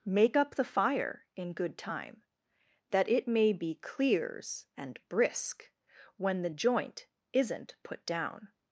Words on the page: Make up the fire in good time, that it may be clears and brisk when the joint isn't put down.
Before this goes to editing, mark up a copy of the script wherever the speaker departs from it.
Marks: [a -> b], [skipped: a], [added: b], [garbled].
Make up the fire in good time, that it may be clears and brisk when the joint isn't put down.